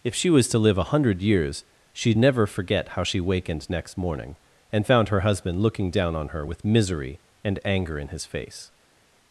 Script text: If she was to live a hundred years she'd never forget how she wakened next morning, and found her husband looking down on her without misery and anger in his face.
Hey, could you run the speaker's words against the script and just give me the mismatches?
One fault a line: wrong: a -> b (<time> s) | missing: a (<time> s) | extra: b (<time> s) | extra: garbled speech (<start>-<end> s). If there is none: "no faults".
wrong: without -> with (6.4 s)